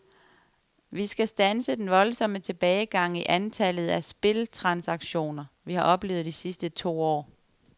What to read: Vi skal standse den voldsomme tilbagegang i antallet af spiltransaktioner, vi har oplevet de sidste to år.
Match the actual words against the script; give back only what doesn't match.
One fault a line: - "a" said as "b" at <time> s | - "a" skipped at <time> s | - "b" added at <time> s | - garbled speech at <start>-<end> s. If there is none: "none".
none